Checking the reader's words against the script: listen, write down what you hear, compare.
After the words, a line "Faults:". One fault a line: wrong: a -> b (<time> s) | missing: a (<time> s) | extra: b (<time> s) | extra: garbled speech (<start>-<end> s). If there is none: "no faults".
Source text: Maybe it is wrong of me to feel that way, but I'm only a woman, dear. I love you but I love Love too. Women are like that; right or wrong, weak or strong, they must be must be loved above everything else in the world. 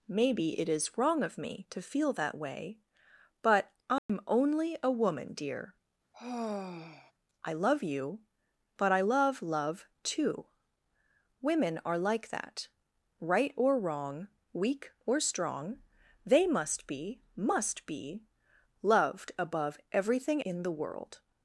Maybe it is wrong of me to feel that way, but I'm only a woman, dear. I love you but I love Love too. Women are like that; right or wrong, weak or strong, they must be must be loved above everything in the world.
Faults:
missing: else (20.4 s)